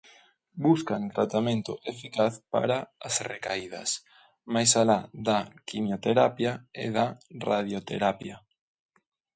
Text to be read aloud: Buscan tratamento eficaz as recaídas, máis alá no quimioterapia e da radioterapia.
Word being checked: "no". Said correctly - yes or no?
no